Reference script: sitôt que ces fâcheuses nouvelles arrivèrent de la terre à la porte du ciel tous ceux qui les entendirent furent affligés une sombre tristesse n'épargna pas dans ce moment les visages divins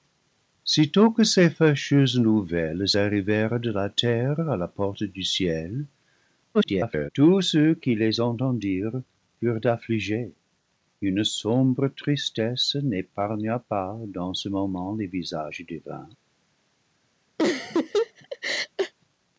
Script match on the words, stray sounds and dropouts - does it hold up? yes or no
no